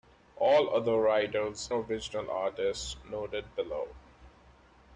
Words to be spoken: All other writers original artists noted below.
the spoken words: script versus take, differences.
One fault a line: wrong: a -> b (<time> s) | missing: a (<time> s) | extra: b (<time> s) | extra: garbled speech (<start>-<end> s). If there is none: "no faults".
no faults